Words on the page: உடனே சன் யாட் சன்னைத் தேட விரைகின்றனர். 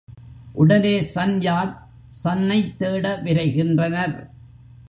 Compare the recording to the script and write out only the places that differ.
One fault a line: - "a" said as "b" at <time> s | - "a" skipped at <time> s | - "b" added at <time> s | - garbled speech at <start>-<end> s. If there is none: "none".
none